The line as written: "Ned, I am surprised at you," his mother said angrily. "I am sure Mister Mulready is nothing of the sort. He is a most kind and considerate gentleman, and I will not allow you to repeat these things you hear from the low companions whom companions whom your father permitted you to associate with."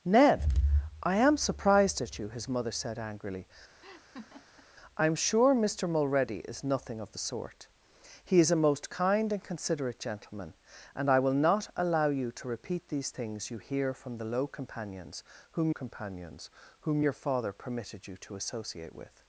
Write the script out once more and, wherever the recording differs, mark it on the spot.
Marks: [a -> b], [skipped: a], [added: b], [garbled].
"Ned, I am surprised at you," his mother said angrily. "I am sure Mister Mulready is nothing of the sort. He is a most kind and considerate gentleman, and I will not allow you to repeat these things you hear from the low companions whom companions whom your father permitted you to associate with."